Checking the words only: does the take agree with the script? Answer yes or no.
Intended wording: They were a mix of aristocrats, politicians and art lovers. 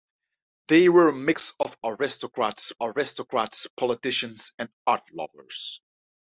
no